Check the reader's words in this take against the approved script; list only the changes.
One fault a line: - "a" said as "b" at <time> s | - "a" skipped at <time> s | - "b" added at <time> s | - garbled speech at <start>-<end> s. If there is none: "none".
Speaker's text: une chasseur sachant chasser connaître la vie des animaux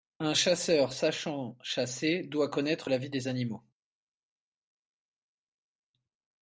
- "une" said as "un" at 0.2 s
- "doit" added at 2.2 s